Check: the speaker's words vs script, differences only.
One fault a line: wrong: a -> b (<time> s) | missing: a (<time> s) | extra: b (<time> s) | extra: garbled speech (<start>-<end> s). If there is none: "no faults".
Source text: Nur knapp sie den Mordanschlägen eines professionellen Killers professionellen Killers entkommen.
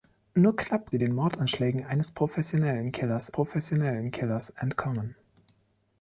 no faults